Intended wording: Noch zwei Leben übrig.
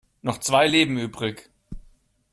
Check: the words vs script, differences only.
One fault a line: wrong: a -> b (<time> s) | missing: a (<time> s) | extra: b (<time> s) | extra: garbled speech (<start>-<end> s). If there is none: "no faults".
no faults